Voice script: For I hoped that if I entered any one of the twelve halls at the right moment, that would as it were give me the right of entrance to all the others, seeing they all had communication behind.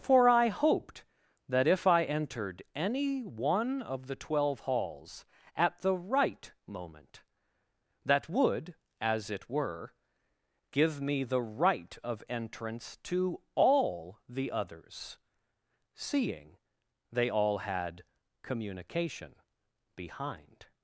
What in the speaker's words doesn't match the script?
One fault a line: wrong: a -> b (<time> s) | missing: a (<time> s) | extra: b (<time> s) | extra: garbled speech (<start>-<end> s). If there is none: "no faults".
no faults